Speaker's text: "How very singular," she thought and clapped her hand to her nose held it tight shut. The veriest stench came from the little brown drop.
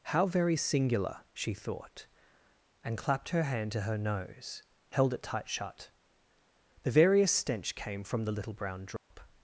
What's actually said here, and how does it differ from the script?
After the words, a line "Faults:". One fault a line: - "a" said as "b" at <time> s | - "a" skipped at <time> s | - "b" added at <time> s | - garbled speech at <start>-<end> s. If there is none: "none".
"How very singular," she thought and clapped her hand to her nose held it tight shut. The veriest stench came from the little brown drop.
Faults:
none